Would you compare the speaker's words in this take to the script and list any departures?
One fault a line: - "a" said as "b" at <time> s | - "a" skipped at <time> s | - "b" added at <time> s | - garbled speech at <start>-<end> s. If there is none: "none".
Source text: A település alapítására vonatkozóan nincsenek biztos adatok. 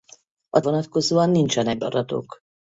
- "település alapítására" skipped at 0.6 s
- "biztos" skipped at 1.8 s